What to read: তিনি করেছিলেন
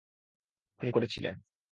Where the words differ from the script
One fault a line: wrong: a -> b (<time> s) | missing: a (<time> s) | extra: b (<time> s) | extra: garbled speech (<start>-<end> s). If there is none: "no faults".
no faults